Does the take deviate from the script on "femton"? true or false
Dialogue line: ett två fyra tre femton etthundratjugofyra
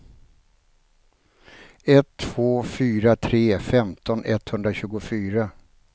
false